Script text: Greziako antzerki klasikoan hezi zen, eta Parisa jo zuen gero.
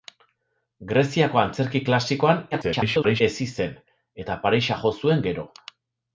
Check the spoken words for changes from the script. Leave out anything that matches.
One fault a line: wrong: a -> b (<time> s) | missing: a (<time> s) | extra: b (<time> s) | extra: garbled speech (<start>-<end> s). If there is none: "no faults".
extra: garbled speech (2.5-3.2 s)